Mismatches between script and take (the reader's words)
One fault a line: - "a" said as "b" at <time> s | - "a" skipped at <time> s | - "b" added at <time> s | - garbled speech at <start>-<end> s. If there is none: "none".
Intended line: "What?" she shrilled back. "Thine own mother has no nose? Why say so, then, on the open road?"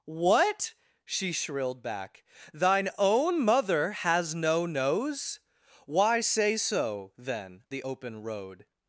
- "on" skipped at 7.6 s